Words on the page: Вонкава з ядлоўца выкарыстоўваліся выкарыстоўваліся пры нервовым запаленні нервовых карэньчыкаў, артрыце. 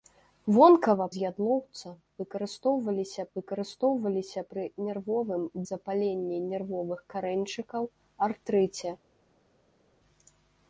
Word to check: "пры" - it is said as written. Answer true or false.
true